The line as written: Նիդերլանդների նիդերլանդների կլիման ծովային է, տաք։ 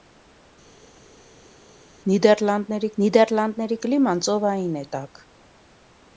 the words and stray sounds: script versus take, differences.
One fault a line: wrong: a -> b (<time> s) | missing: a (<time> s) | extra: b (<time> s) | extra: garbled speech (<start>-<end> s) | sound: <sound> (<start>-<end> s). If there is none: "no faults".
no faults